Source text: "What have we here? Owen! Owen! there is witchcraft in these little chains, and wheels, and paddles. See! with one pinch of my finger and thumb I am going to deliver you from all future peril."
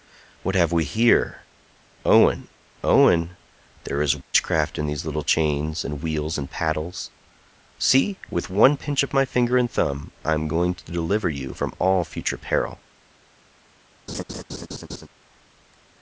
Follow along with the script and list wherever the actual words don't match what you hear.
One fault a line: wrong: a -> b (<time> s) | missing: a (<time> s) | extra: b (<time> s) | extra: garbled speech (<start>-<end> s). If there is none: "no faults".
no faults